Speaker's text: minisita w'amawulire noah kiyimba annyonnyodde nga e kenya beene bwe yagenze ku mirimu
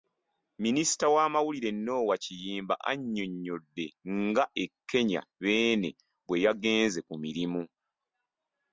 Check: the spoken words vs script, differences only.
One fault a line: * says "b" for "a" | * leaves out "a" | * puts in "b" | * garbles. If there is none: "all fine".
all fine